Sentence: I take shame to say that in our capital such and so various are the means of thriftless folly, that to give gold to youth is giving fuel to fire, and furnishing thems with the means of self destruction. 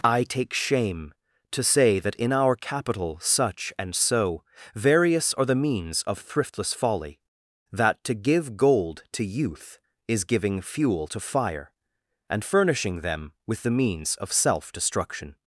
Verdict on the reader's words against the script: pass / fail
fail